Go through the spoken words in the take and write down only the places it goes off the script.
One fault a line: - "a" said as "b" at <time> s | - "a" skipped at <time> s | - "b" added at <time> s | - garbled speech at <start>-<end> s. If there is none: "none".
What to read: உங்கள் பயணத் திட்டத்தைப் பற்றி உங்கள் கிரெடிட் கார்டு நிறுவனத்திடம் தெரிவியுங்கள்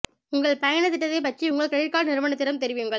none